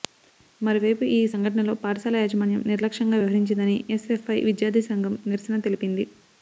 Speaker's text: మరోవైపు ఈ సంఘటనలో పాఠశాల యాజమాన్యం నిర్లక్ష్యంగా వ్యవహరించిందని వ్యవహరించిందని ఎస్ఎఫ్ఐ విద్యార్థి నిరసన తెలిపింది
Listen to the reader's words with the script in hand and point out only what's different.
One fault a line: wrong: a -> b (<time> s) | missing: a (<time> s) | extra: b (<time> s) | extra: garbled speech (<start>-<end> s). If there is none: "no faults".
missing: వ్యవహరించిందని (3.8 s)
extra: సంఘం (4.9 s)